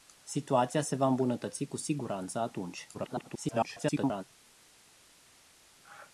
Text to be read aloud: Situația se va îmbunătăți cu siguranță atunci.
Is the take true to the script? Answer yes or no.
no